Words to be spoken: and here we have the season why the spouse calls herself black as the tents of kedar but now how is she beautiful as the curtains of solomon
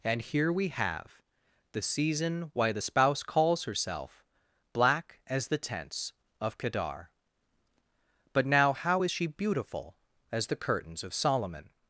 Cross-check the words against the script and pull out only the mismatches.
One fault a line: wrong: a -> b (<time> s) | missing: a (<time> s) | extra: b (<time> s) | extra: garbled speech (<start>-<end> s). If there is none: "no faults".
no faults